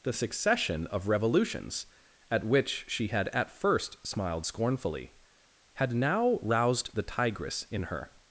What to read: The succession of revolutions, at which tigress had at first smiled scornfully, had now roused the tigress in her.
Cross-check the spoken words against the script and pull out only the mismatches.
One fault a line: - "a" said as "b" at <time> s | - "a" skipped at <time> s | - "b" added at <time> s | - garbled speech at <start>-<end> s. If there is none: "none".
- "tigress" said as "she" at 2.9 s